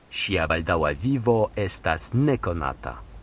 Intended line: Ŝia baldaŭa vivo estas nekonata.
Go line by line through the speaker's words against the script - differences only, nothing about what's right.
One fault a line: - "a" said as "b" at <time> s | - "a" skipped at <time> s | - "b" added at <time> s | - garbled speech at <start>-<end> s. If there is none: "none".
none